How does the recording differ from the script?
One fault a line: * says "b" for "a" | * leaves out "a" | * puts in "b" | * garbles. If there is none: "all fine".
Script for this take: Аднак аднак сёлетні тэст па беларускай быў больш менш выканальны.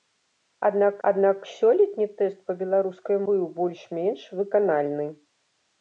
all fine